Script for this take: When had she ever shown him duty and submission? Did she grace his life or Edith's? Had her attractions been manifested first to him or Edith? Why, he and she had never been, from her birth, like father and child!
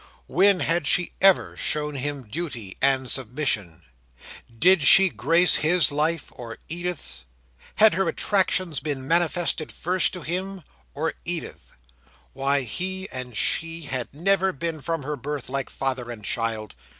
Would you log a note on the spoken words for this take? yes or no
no